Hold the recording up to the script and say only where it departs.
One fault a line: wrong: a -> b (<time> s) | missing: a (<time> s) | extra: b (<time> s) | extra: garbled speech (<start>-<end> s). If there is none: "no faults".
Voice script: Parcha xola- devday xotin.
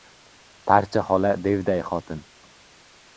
no faults